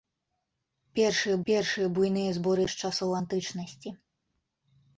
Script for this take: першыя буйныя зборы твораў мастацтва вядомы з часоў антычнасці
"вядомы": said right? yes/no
no